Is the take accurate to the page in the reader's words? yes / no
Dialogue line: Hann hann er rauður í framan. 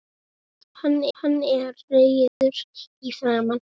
yes